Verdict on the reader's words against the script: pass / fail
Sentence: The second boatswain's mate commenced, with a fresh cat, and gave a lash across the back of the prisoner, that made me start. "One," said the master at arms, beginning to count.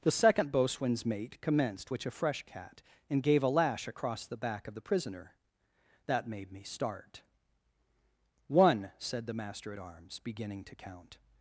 fail